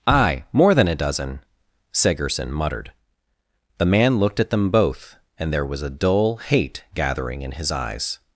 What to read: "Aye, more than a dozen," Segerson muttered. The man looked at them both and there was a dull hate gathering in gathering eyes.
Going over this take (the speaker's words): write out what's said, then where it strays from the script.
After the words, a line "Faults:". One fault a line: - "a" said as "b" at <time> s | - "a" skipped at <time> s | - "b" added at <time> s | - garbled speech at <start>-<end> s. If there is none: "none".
"Aye, more than a dozen," Segerson muttered. The man looked at them both and there was a dull hate gathering in his eyes.
Faults:
- "gathering" said as "his" at 7.5 s